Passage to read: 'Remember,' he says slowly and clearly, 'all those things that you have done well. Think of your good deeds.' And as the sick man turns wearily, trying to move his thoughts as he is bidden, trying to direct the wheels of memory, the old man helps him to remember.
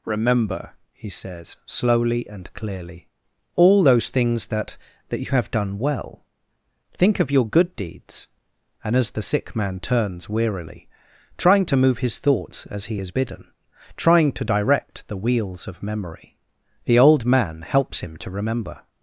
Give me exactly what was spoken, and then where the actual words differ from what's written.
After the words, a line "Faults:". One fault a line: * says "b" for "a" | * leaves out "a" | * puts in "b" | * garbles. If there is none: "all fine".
'Remember,' he says slowly and clearly, 'all those things that that you have done well. Think of your good deeds.' And as the sick man turns wearily, trying to move his thoughts as he is bidden, trying to direct the wheels of memory, the old man helps him to remember.
Faults:
* puts in "that"